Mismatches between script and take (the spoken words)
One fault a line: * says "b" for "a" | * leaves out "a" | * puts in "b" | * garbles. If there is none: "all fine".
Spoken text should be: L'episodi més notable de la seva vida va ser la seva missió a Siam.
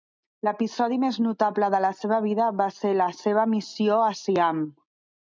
all fine